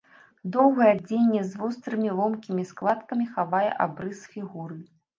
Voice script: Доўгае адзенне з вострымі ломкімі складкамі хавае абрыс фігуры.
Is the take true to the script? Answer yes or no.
yes